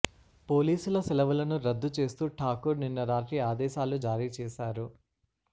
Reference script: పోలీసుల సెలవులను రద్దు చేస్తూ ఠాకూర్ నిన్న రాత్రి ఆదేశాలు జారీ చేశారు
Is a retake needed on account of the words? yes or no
no